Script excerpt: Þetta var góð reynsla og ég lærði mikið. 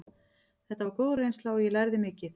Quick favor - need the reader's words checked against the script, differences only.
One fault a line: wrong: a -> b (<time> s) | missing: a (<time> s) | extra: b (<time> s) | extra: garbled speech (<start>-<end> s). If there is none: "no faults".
no faults